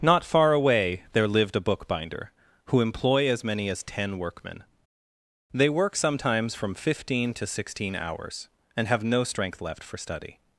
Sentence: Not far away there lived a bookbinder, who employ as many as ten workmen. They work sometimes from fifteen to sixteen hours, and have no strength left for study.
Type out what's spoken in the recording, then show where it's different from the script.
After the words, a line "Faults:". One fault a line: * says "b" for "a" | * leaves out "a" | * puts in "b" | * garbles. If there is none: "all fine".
Not far away there lived a bookbinder, who employ as many as ten workmen. They work sometimes from fifteen to sixteen hours, and have no strength left for study.
Faults:
all fine